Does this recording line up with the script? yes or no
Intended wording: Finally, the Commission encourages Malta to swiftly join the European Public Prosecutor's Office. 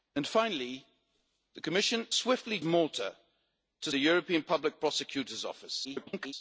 no